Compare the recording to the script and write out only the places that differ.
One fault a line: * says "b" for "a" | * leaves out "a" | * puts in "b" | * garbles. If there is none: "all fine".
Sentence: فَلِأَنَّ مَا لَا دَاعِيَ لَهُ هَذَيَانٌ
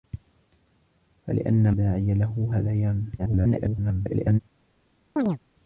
* leaves out "مَا لَا"
* garbles